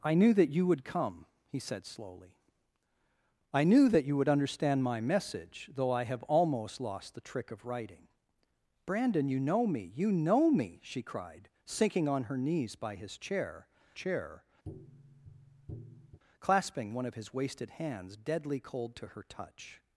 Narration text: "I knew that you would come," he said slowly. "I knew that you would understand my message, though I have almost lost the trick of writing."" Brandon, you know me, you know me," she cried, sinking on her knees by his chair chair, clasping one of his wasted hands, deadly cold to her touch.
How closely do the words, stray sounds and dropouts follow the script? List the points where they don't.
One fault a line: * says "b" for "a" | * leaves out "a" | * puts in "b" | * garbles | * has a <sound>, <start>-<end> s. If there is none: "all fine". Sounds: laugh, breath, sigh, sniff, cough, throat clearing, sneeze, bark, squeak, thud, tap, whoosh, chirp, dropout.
* has a tap, 14.6-16.2 s